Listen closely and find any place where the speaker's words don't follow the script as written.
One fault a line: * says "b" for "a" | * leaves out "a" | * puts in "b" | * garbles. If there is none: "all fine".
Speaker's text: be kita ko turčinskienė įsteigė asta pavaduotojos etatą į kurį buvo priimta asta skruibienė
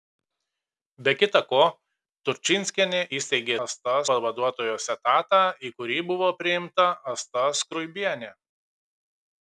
all fine